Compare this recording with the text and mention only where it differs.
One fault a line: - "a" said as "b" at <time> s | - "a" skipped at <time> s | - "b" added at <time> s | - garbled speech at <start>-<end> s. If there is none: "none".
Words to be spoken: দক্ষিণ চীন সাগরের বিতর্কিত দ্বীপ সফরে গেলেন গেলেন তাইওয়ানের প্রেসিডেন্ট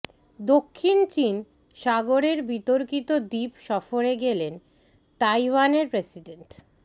- "গেলেন" skipped at 4.5 s